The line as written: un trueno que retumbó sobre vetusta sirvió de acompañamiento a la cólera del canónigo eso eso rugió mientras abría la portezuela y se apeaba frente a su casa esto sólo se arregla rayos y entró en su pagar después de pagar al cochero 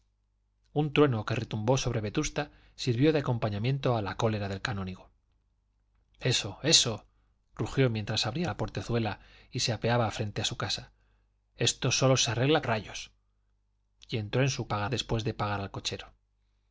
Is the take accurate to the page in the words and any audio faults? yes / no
yes